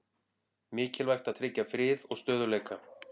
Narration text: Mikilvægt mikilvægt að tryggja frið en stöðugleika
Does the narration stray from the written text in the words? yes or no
yes